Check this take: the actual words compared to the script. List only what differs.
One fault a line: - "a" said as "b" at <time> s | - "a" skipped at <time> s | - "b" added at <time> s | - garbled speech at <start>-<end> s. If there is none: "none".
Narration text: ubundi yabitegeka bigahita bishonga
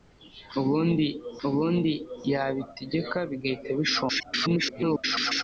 - "ubundi" added at 1.5 s
- garbled speech at 4.1-5.4 s